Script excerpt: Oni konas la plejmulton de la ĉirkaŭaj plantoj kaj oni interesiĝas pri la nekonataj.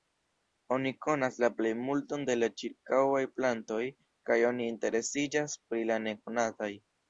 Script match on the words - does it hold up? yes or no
yes